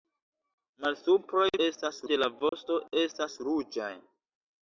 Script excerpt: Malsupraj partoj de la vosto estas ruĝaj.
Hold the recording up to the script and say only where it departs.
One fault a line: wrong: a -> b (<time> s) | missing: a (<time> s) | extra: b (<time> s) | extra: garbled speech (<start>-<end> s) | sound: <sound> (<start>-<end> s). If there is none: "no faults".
wrong: partoj -> estas (1.7 s)
sound: dropout (2.5-2.5 s)